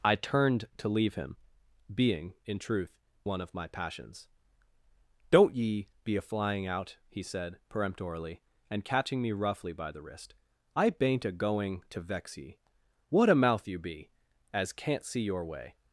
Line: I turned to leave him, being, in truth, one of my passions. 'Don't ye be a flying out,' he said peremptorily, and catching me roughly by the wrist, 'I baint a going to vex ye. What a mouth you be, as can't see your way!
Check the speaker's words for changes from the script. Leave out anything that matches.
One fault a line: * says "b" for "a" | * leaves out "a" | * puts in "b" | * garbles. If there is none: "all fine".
all fine